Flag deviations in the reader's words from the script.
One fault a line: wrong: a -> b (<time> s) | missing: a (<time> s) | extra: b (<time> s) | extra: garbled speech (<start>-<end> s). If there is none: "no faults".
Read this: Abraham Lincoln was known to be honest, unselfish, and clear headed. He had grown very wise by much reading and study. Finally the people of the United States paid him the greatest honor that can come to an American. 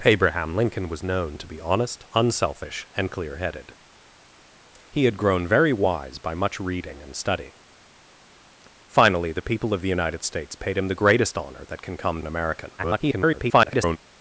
missing: to (12.2 s)
extra: garbled speech (12.8-14.0 s)